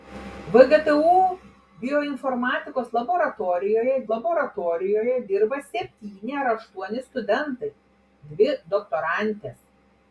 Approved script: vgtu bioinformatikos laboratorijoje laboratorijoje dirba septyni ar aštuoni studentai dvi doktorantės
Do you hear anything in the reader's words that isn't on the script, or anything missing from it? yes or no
no